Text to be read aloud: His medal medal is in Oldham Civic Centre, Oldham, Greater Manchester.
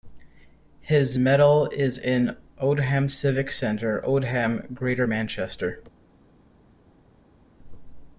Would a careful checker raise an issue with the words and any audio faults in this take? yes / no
yes